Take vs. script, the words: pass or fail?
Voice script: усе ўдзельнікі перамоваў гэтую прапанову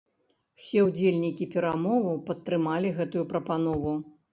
fail